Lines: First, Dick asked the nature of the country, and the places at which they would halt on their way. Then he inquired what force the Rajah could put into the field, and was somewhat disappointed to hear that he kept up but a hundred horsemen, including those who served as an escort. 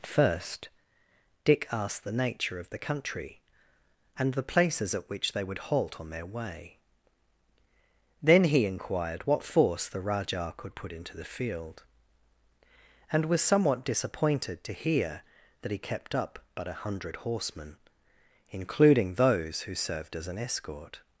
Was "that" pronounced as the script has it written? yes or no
yes